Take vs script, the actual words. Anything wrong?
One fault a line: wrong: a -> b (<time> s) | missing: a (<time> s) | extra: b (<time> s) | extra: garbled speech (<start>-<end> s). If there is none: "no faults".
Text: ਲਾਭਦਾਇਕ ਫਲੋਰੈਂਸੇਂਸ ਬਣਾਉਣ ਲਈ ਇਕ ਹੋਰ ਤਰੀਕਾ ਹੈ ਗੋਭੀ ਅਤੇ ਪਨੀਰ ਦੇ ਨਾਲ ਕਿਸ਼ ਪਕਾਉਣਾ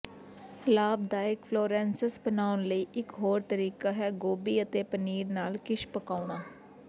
missing: ਦੇ (5.3 s)